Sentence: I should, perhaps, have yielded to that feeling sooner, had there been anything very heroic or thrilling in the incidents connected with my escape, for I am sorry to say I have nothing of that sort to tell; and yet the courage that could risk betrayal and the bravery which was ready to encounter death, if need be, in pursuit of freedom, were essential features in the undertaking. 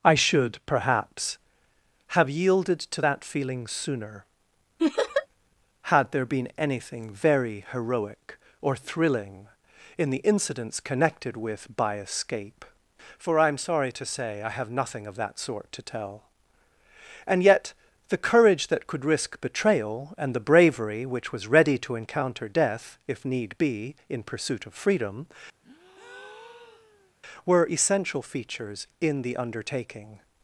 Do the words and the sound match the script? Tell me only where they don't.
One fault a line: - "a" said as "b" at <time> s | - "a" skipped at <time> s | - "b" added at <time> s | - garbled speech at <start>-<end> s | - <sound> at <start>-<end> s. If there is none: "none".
- laugh at 4.8-5.3 s
- "my" said as "by" at 11.8 s
- breath at 25.6-27.1 s